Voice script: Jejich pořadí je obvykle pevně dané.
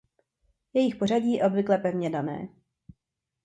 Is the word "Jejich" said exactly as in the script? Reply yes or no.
yes